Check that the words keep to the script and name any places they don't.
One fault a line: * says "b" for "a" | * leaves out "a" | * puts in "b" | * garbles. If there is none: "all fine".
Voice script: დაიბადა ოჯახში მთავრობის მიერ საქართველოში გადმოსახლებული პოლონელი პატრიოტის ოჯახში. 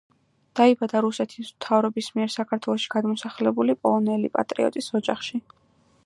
* says "რუსეთის" for "ოჯახში"